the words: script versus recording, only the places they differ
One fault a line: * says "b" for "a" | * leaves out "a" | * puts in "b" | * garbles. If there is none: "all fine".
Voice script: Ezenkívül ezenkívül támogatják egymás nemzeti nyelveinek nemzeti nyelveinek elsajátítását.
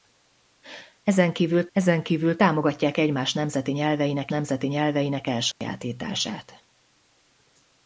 all fine